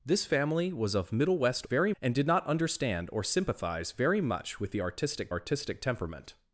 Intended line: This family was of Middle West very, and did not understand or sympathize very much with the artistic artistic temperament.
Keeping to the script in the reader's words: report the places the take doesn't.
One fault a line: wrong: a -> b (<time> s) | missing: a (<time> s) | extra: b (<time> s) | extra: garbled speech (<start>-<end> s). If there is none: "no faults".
no faults